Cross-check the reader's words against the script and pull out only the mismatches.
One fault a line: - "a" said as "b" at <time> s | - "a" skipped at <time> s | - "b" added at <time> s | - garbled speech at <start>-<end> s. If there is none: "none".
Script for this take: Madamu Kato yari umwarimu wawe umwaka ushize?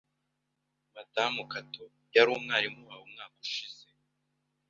none